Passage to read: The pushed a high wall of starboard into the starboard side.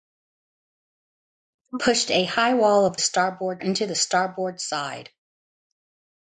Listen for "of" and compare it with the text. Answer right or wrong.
right